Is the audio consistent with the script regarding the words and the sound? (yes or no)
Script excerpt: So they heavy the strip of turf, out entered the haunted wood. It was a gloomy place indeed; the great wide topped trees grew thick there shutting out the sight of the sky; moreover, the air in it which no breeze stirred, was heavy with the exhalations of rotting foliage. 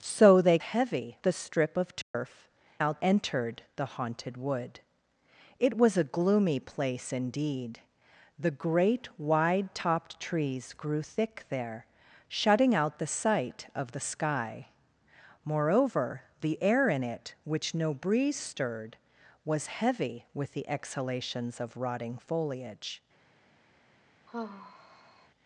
no